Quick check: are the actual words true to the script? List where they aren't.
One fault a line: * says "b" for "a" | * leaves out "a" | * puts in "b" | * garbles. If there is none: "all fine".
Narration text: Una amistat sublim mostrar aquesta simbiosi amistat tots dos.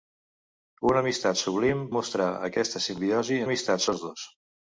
all fine